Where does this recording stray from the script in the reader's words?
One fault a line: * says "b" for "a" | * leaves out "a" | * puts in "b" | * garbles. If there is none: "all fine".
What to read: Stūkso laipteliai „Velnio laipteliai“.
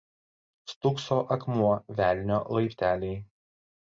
* says "akmuo" for "laipteliai"